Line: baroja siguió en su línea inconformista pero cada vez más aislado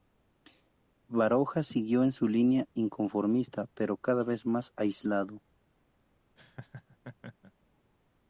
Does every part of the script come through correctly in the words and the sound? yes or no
no